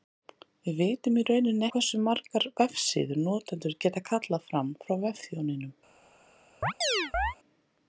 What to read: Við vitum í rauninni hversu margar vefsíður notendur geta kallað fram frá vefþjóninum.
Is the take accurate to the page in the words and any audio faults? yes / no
no